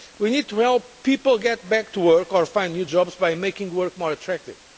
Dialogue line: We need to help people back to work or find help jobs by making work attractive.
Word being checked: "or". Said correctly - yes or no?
yes